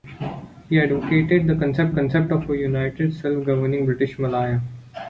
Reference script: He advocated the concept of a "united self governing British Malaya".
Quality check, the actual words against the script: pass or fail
fail